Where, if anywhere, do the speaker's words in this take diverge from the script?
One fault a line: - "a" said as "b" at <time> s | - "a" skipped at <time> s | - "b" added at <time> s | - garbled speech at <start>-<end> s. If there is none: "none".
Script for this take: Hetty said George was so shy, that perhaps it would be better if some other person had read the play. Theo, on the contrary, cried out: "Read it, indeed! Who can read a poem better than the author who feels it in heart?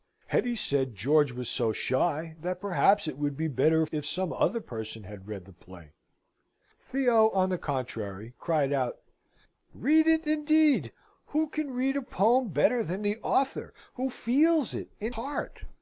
none